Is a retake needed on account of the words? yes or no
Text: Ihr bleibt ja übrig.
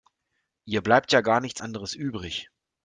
yes